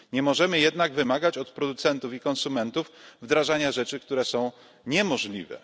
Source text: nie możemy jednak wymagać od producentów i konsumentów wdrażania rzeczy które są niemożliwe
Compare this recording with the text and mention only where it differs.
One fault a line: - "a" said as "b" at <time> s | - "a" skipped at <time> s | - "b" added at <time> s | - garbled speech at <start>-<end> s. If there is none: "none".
none